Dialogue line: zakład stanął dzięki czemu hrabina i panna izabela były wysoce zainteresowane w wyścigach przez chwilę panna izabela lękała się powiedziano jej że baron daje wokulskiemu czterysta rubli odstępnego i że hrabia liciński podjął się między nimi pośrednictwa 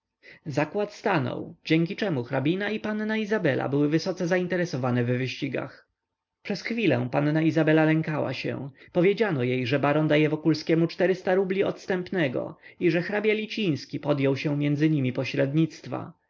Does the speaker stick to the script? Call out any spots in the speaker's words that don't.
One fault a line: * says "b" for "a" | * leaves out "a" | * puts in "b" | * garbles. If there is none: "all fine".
all fine